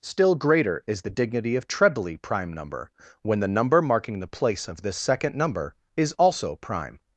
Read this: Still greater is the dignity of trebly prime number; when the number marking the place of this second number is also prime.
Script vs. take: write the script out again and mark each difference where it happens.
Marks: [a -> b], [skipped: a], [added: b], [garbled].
Still greater is the dignity of trebly prime number; when the number marking the place of this second number is also prime.